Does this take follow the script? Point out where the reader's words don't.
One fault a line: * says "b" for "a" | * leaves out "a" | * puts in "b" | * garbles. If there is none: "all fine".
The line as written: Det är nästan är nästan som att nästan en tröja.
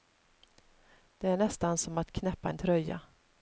* leaves out "är nästan"
* says "knäppa" for "nästan"